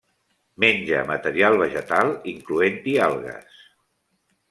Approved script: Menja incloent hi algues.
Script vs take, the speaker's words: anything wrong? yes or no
yes